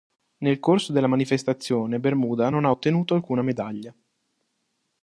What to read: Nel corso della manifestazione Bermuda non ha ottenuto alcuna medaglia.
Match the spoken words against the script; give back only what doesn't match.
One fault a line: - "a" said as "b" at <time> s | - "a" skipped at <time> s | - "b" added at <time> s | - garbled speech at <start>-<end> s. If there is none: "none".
none